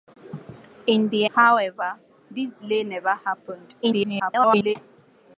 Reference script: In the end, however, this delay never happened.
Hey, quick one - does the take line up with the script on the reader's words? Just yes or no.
no